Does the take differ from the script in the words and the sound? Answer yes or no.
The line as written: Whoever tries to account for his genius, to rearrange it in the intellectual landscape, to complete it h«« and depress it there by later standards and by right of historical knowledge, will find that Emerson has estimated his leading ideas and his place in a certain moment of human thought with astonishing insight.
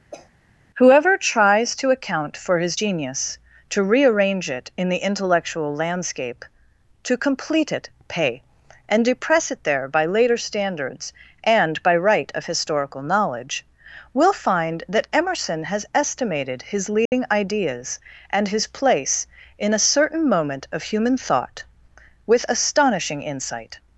yes